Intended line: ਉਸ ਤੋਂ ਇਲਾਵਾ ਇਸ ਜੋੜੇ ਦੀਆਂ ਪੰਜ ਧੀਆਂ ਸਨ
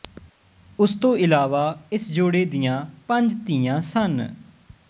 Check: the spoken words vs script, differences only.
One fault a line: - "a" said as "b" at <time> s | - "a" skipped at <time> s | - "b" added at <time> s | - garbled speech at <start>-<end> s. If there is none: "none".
none